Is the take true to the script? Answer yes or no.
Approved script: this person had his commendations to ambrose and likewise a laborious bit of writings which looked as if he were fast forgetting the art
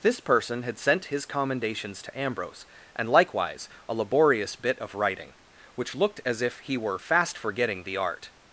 no